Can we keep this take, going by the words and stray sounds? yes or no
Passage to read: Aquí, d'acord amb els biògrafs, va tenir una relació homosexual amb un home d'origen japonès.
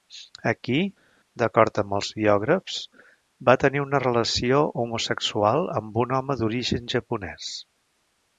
yes